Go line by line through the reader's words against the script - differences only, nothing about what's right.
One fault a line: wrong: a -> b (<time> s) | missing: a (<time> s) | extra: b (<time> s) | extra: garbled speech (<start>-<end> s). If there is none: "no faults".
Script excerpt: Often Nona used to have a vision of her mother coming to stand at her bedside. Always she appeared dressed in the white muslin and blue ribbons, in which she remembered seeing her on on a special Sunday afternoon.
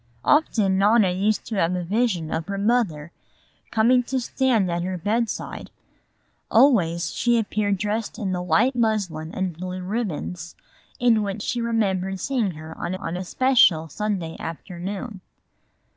no faults